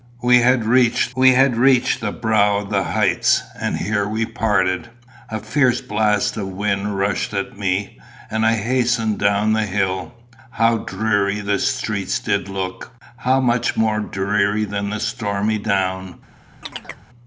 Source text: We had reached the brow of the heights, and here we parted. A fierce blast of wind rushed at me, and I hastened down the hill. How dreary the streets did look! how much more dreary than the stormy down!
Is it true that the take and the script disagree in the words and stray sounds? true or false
true